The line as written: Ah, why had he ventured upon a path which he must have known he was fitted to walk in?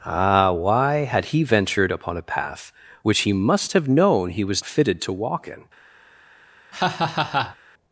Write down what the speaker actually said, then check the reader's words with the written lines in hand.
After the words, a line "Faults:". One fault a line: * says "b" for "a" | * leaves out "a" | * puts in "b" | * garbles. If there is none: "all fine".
Ah, why had he ventured upon a path which he must have known he was fitted to walk in?
Faults:
all fine